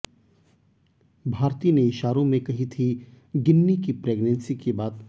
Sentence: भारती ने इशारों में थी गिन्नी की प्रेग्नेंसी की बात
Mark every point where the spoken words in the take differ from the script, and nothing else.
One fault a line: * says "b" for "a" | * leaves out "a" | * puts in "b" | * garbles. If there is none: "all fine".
* puts in "कही"